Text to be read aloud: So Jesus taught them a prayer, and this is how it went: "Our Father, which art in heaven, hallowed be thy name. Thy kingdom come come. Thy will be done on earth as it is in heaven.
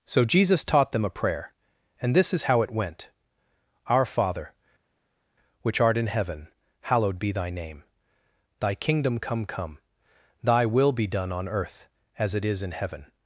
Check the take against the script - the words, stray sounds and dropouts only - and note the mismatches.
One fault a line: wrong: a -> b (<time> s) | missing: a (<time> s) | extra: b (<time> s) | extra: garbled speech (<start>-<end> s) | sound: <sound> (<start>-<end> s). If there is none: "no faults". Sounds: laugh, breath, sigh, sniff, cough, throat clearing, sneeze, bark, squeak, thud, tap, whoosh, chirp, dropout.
no faults